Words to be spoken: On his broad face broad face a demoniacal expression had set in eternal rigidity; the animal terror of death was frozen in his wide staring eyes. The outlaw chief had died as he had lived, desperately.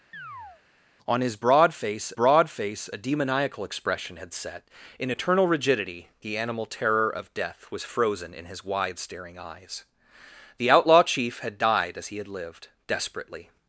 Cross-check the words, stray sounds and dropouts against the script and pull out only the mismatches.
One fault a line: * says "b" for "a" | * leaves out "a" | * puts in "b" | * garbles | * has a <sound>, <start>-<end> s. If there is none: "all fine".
* has a chirp, 0.1-0.6 s